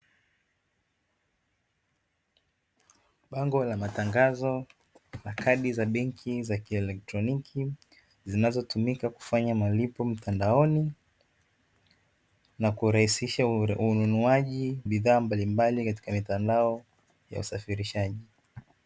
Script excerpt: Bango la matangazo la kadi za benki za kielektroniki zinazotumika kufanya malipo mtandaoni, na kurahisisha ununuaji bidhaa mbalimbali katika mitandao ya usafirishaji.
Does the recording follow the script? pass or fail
pass